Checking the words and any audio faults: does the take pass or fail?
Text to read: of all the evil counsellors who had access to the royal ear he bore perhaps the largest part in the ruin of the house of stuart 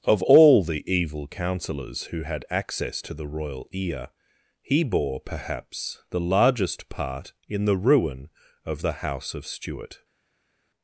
pass